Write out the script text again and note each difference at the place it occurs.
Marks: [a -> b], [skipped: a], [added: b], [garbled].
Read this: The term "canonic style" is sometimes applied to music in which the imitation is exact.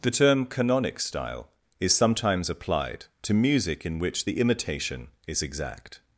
The term "canonic style" is sometimes applied to music in which the imitation is exact.